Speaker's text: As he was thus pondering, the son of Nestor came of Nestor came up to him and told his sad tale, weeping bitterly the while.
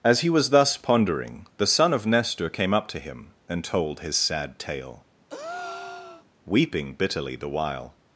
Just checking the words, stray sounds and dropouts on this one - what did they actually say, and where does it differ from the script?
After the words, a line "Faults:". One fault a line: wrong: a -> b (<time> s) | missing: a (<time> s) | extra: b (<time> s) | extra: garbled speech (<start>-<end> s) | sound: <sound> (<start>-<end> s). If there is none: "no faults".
As he was thus pondering, the son of Nestor came up to him and told his sad tale, weeping bitterly the while.
Faults:
missing: of Nestor came (2.7 s)
sound: breath (5.3-6.3 s)